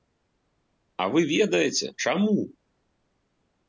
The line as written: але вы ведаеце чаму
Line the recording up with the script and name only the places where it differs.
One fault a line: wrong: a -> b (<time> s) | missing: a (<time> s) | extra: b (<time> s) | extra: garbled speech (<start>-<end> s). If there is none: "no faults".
wrong: але -> а (1.0 s)